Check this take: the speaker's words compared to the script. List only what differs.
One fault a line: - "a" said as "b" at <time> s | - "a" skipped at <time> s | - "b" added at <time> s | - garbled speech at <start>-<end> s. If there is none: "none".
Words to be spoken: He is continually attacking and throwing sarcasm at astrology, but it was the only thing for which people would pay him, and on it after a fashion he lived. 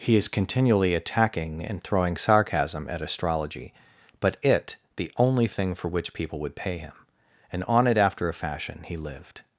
- "was" skipped at 4.8 s